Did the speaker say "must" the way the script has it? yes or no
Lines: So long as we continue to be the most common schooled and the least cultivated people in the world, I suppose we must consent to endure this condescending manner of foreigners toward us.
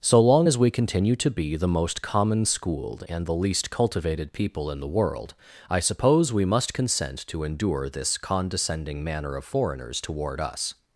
yes